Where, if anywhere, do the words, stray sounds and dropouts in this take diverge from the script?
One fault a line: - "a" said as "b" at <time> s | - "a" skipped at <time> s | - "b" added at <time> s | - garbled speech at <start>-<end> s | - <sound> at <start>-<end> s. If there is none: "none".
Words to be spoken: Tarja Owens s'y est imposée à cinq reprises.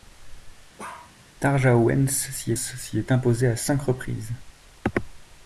- bark at 0.8-1.1 s
- "s'y" added at 2.5 s